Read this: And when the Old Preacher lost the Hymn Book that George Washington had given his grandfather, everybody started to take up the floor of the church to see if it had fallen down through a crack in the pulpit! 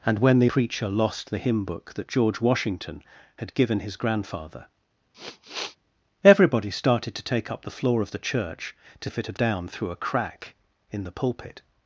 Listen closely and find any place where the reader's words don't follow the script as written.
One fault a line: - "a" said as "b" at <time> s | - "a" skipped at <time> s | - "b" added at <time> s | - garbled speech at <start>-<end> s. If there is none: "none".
- "Old" skipped at 0.5 s
- "see" skipped at 9.1 s
- "fallen" skipped at 9.4 s